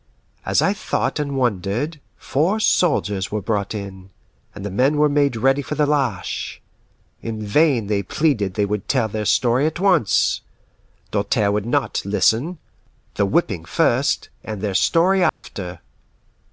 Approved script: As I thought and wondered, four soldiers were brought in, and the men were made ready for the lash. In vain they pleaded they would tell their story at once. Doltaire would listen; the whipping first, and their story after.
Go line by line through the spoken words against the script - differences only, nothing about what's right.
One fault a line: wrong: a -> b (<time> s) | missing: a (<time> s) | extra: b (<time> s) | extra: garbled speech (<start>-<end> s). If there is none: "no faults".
extra: not (11.7 s)